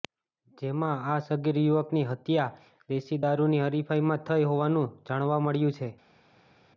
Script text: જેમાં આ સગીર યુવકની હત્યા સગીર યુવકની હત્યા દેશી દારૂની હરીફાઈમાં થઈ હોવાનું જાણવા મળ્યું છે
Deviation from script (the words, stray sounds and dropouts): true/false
true